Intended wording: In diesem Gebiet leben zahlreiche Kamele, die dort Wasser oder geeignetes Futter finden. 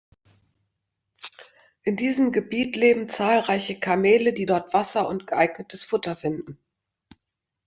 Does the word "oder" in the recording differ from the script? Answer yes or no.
yes